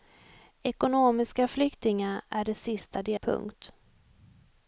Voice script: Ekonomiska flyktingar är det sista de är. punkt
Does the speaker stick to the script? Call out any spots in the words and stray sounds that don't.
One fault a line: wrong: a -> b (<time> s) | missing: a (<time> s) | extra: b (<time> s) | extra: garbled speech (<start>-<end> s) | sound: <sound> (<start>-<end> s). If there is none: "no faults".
missing: är (3.1 s)